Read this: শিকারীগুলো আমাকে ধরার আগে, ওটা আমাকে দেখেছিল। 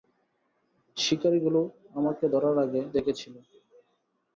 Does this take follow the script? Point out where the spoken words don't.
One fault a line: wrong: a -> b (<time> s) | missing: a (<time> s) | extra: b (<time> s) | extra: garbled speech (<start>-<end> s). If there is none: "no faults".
missing: ওটা আমাকে (2.8 s)